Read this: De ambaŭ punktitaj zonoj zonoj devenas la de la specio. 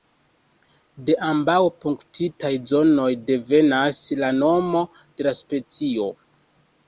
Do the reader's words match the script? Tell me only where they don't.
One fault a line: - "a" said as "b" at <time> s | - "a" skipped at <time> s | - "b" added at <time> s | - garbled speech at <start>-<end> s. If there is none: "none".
- "zonoj" skipped at 3.0 s
- "nomo" added at 4.4 s